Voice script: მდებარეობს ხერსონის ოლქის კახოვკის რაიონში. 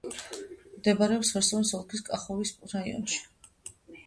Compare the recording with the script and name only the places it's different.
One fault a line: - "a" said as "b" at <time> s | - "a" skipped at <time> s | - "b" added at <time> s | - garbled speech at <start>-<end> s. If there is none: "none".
none